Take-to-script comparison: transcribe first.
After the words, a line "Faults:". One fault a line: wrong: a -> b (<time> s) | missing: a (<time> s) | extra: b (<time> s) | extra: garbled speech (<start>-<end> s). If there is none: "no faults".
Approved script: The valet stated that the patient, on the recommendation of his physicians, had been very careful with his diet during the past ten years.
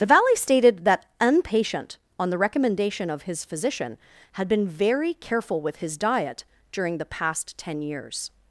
The valet stated that an patient, on the recommendation of his physician, had been very careful with his diet during the past ten years.
Faults:
wrong: the -> an (1.2 s)
wrong: physicians -> physician (3.5 s)